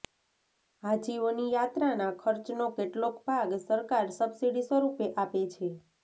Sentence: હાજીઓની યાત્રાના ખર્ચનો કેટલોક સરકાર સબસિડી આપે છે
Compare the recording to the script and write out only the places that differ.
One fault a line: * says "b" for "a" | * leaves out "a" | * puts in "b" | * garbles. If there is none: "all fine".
* puts in "ભાગ"
* puts in "સ્વરૂપે"